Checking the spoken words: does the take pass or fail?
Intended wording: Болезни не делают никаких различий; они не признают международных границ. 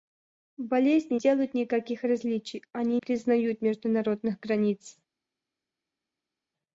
fail